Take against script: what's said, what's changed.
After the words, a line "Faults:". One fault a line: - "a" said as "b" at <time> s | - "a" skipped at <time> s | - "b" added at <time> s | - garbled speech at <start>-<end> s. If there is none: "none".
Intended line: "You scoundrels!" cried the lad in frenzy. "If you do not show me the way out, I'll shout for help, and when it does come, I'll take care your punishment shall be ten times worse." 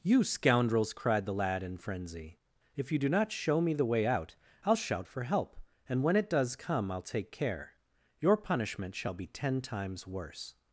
"You scoundrels!" cried the lad in frenzy. "If you do not show me the way out, I'll shout for help, and when it does come, I'll take care your punishment shall be ten times worse."
Faults:
none